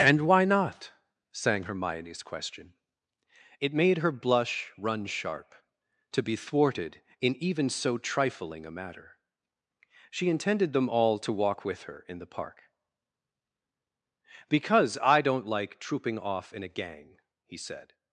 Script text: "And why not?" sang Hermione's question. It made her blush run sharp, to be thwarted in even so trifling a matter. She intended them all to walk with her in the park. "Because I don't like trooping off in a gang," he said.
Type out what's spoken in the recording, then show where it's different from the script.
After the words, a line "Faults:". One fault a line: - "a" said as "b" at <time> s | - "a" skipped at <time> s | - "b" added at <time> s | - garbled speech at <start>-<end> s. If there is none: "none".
"And why not?" sang Hermione's question. It made her blush run sharp, to be thwarted in even so trifling a matter. She intended them all to walk with her in the park. "Because I don't like trooping off in a gang," he said.
Faults:
none